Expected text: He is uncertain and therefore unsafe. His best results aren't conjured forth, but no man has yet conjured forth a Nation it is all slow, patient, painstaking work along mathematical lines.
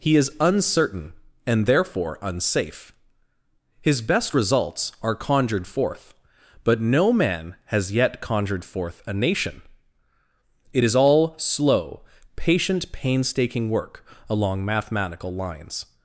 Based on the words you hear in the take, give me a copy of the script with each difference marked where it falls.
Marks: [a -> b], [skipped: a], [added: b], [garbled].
He is uncertain and therefore unsafe. His best results [aren't -> are] conjured forth, but no man has yet conjured forth a Nation it is all slow, patient, painstaking work along mathematical lines.